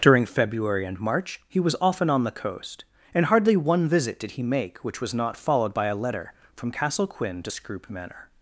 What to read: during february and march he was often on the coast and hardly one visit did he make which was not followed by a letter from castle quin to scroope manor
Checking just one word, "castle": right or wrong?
right